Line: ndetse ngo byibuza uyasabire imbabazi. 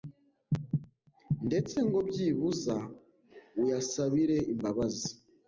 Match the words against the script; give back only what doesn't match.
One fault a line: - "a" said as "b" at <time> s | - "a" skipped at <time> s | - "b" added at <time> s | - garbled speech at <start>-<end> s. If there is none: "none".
none